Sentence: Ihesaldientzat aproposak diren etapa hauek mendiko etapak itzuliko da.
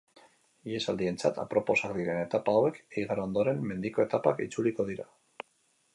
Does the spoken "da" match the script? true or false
false